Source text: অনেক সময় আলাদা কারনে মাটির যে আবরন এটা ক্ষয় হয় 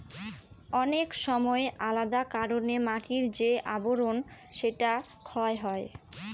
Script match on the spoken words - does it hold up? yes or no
no